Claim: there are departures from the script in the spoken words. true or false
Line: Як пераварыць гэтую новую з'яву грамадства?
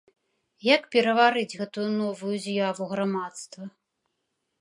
false